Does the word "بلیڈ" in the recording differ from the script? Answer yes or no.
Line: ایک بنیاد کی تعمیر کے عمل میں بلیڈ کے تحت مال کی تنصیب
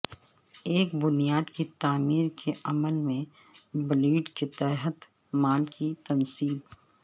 no